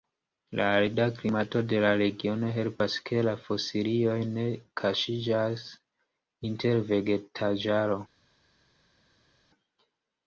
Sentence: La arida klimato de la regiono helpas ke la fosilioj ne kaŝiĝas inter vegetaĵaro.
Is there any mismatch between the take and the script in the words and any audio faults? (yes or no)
no